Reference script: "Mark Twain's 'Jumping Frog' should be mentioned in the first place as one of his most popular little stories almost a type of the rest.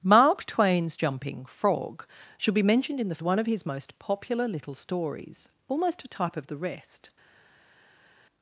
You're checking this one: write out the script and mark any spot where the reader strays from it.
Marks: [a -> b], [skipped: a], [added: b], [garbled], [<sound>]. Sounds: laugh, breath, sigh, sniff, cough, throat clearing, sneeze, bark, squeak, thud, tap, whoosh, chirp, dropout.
"Mark Twain's 'Jumping Frog' should be mentioned in the [skipped: first place as] one of his most popular little stories almost a type of the rest.